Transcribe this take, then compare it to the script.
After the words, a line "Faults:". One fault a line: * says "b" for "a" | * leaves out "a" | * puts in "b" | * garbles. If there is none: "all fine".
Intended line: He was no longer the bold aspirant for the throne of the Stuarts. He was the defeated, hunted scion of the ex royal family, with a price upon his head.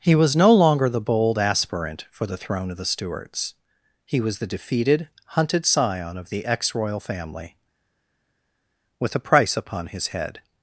He was no longer the bold aspirant for the throne of the Stuarts. He was the defeated, hunted scion of the ex royal family, with a price upon his head.
Faults:
all fine